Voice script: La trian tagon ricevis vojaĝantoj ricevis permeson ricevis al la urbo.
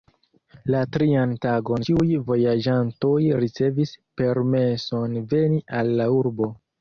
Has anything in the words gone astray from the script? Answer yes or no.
yes